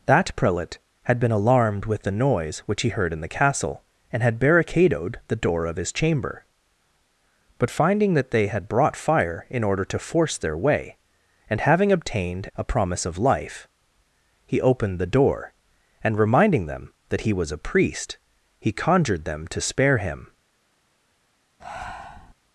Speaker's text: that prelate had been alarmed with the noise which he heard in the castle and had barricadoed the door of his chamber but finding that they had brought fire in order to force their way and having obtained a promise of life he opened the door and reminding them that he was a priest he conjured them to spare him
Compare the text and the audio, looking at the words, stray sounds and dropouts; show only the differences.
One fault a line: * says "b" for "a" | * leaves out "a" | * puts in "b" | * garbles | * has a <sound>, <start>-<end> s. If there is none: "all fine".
* has a breath, 21.6-22.3 s